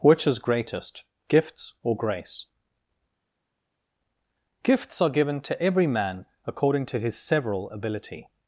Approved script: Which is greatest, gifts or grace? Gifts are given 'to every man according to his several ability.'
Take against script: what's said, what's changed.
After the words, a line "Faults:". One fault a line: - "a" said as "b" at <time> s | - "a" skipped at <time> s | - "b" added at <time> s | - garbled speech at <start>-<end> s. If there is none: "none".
Which is greatest, gifts or grace? Gifts are given 'to every man according to his several ability.'
Faults:
none